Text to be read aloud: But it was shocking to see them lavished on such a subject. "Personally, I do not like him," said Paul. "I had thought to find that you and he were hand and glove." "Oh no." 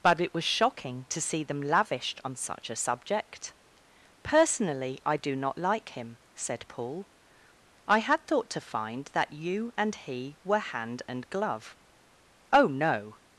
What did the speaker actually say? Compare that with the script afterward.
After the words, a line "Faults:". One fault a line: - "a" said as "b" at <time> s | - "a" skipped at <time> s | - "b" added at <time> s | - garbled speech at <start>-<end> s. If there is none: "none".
But it was shocking to see them lavished on such a subject. "Personally, I do not like him," said Paul. "I had thought to find that you and he were hand and glove." "Oh no."
Faults:
none